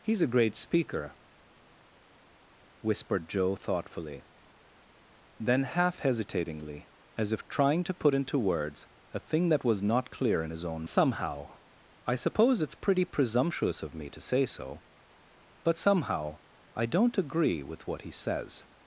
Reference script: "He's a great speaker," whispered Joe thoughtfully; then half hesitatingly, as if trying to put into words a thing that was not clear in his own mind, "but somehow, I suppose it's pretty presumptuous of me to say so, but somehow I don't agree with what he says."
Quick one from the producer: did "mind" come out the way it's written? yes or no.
no